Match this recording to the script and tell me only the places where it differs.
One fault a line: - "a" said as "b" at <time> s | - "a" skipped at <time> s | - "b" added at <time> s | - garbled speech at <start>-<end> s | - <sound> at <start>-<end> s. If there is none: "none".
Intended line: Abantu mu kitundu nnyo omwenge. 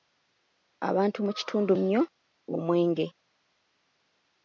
none